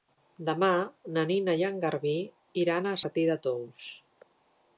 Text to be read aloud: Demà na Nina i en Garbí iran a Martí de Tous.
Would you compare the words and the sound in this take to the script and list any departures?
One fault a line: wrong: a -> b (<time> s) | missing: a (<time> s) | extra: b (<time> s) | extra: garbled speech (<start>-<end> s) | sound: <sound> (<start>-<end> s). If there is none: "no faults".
no faults